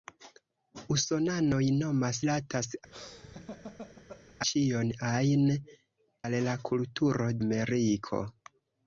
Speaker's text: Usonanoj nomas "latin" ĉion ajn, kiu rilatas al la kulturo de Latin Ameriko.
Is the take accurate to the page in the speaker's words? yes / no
no